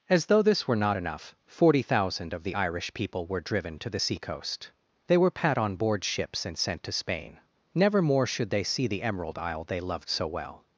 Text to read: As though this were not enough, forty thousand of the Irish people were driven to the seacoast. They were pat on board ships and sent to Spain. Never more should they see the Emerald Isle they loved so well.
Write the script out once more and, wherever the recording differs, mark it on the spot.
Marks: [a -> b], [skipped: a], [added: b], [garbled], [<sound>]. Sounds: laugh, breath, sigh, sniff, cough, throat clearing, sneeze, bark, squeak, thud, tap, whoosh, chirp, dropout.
As though this were not enough, forty thousand of the Irish people were driven to the seacoast. They were pat on board ships and sent to Spain. Never more should they see the Emerald Isle they loved so well.